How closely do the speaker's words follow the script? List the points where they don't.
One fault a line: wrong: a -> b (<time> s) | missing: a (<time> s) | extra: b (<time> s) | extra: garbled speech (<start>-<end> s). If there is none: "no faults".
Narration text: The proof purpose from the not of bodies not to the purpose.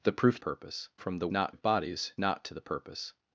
no faults